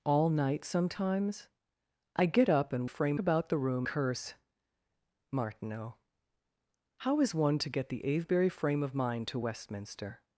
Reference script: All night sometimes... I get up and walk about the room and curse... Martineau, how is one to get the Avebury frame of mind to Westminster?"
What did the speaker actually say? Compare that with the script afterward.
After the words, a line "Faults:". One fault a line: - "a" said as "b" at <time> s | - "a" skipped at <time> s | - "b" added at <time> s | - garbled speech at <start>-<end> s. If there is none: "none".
All night sometimes... I get up and frame about the room curse... Martineau, how is one to get the Avebury frame of mind to Westminster?"
Faults:
- "walk" said as "frame" at 2.8 s
- "and" skipped at 3.9 s